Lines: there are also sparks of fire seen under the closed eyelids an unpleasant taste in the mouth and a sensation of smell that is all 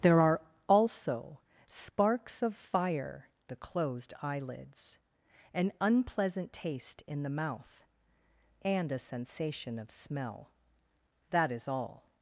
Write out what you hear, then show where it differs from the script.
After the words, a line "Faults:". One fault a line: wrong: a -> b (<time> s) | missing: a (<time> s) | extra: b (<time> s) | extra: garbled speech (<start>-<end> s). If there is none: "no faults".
there are also sparks of fire the closed eyelids an unpleasant taste in the mouth and a sensation of smell that is all
Faults:
missing: seen under (3.3 s)